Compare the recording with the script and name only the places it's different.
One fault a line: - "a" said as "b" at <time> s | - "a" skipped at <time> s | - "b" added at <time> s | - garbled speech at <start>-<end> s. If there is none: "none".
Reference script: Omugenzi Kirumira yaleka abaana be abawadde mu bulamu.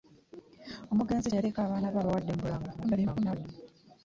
- "Kirumira" skipped at 1.3 s
- garbled speech at 2.8-3.5 s